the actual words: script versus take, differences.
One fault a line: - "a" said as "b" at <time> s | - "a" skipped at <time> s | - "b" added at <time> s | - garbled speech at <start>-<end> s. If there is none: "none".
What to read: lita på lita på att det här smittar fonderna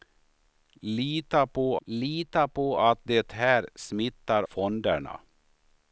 none